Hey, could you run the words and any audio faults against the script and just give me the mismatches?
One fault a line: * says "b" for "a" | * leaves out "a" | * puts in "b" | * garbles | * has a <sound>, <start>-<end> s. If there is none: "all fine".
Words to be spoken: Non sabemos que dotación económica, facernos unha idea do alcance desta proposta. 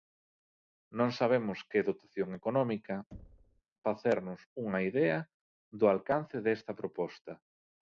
* has a thud, 3.1-3.6 s